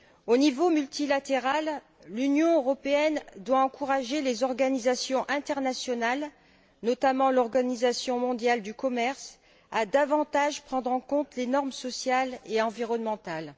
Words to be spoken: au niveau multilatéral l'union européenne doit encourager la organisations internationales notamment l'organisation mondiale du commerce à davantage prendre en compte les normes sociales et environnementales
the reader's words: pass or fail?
fail